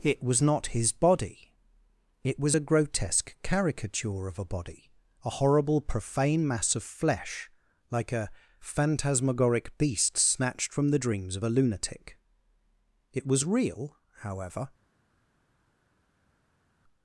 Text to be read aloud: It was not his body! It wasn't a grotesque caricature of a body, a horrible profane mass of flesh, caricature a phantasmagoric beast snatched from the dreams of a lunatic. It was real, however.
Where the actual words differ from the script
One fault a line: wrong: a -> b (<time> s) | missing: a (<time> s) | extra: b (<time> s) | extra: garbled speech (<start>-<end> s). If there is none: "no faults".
wrong: wasn't -> was (2.4 s)
wrong: caricature -> like (7.9 s)